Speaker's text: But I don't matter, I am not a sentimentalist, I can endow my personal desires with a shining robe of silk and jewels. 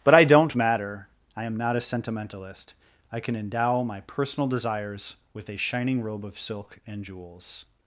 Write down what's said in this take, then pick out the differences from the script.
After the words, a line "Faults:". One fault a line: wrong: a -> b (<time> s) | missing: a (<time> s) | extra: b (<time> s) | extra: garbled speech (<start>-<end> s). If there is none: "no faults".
But I don't matter, I am not a sentimentalist, I can endow my personal desires with a shining robe of silk and jewels.
Faults:
no faults